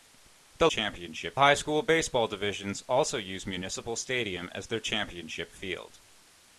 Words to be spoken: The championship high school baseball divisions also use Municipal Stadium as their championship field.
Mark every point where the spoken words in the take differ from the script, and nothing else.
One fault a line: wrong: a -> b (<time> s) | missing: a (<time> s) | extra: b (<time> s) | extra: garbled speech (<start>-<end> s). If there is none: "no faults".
no faults